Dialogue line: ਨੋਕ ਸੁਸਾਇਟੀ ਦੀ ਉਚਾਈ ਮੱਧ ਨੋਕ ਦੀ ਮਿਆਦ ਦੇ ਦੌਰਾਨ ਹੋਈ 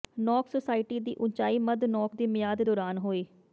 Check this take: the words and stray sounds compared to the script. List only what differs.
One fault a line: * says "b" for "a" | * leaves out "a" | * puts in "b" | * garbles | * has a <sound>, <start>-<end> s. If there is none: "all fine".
* leaves out "ਦੇ"